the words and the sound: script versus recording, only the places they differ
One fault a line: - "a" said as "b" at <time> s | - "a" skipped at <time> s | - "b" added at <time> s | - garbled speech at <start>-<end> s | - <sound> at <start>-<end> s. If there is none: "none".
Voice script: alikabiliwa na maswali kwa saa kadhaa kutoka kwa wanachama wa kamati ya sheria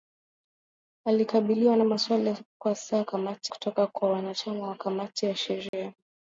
- "kadhaa" said as "kamati" at 3.0 s
- dropout at 5.7-5.7 s